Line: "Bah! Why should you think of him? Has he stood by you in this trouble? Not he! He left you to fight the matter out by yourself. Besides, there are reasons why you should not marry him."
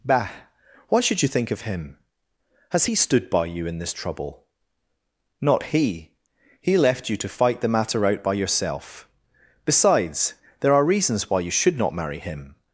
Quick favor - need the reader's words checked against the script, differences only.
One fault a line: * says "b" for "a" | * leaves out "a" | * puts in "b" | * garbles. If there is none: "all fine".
all fine